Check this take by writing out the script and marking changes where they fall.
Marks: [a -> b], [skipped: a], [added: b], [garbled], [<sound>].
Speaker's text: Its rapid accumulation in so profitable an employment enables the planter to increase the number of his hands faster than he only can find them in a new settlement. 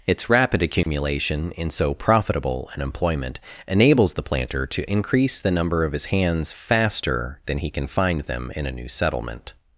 Its rapid accumulation [dropout] in so profitable an employment enables the planter to increase the number of his hands faster than he [skipped: only] can find them in a new settlement.